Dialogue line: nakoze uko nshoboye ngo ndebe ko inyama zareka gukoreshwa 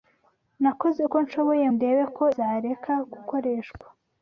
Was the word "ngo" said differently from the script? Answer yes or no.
yes